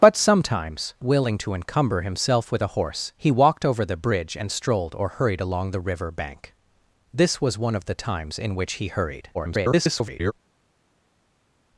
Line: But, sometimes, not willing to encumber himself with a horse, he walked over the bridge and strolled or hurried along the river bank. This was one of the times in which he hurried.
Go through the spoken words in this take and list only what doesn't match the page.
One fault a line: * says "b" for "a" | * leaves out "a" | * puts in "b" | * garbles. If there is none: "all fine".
* leaves out "not"
* garbles